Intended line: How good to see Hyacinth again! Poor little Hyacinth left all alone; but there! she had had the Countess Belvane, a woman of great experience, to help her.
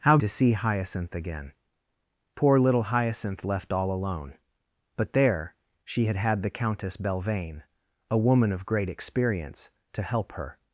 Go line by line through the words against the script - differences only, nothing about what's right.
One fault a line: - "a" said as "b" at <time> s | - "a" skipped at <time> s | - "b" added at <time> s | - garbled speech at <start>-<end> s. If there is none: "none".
- "good" skipped at 0.2 s